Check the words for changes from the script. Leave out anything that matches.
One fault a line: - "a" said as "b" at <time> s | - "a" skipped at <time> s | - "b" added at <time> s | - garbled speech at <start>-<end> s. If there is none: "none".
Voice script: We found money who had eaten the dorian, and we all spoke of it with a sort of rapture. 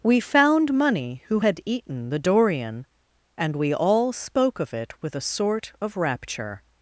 none